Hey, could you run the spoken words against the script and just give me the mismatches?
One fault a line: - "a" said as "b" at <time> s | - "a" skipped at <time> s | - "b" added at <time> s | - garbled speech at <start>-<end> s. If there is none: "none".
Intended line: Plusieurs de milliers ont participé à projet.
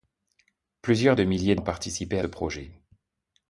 none